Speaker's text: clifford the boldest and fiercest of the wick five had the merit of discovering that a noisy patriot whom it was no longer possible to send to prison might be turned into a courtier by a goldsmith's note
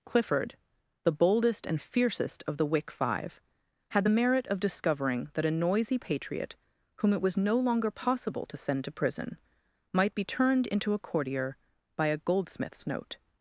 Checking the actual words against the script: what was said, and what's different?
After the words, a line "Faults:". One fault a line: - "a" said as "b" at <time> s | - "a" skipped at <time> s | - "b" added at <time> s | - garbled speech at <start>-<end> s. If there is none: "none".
clifford the boldest and fiercest of the wick five had the merit of discovering that a noisy patriot whom it was no longer possible to send to prison might be turned into a courtier by a goldsmith's note
Faults:
none